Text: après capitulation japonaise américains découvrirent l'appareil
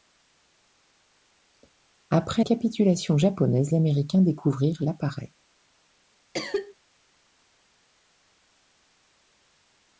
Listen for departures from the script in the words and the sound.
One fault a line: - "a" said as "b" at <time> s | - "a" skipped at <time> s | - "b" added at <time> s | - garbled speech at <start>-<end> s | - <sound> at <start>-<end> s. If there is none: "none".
- cough at 6.3-6.7 s